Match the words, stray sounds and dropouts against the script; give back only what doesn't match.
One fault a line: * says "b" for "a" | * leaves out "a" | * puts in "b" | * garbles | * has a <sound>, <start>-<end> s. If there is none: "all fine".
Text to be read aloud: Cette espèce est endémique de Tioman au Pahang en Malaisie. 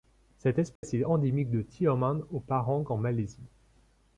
* has a dropout, 0.8-0.8 s